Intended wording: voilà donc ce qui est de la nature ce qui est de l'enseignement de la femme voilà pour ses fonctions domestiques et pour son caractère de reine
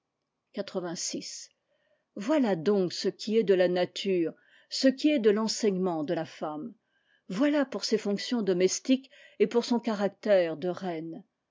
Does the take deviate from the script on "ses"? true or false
false